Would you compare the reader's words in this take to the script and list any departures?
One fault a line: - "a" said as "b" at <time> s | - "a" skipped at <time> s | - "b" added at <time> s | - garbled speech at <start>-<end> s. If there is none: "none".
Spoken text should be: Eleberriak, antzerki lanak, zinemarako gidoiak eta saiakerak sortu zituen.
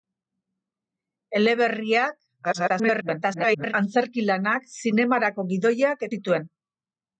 - garbled speech at 2.4-3.7 s
- "eta saiakerak sortu" skipped at 6.1 s